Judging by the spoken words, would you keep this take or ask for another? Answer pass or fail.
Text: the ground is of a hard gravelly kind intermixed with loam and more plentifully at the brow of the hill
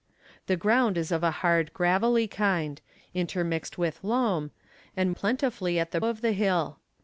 fail